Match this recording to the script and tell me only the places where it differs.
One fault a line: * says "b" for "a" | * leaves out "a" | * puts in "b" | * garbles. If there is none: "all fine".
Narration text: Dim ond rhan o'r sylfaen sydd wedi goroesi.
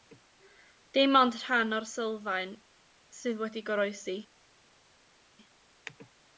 all fine